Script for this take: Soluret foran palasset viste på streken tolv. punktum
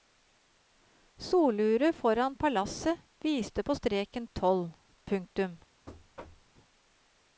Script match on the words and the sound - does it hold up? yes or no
no